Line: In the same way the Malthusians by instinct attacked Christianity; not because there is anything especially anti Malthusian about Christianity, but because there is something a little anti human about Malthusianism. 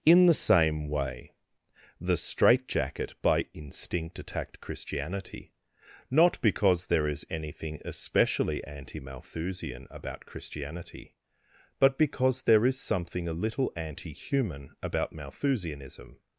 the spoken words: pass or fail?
fail